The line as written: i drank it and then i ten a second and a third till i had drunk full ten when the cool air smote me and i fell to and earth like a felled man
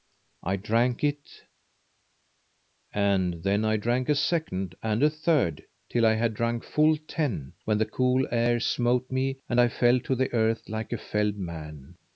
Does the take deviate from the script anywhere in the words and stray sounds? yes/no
yes